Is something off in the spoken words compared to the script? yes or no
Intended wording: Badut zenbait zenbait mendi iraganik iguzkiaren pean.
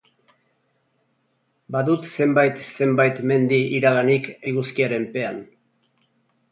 no